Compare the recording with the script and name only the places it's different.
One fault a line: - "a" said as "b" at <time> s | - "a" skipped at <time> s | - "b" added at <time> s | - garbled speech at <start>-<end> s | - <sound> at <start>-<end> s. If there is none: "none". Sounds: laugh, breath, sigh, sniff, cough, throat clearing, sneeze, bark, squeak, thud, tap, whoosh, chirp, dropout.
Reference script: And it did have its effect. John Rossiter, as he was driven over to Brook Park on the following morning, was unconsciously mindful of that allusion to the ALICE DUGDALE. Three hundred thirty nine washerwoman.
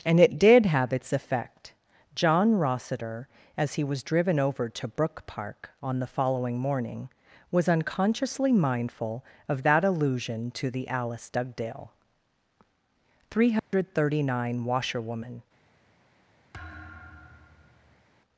- dropout at 13.6-13.7 s
- thud at 16.5-18.0 s